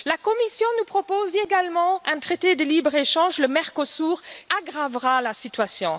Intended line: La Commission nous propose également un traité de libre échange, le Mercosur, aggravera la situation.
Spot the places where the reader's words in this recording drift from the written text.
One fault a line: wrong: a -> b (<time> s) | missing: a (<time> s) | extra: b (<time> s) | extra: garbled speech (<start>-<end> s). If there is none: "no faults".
no faults